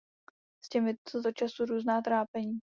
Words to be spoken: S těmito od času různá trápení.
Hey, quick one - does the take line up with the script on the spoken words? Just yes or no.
yes